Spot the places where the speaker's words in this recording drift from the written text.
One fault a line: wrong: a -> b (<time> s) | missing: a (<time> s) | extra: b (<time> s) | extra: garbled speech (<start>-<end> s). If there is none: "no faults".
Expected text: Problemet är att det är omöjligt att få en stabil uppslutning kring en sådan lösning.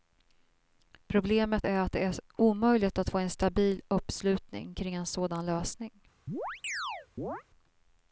no faults